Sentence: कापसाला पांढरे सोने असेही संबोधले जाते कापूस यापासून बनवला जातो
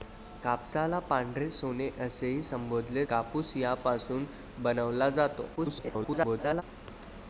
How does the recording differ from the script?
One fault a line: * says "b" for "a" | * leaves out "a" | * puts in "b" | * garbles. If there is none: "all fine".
* leaves out "जाते"
* garbles